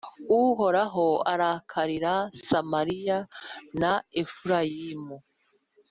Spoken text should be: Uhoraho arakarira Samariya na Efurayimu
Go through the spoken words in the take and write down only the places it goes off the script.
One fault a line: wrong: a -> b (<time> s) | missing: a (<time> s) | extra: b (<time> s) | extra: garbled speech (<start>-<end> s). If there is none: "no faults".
no faults